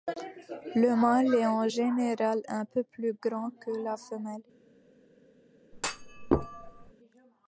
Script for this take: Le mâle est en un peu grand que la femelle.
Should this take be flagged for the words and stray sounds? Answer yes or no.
yes